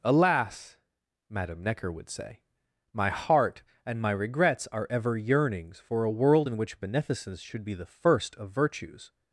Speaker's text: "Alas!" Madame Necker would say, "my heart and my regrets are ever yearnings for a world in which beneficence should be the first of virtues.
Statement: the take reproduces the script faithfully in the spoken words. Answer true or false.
true